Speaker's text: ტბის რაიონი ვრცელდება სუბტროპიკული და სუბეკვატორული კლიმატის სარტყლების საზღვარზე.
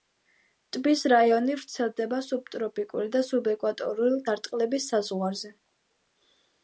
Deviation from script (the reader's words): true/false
true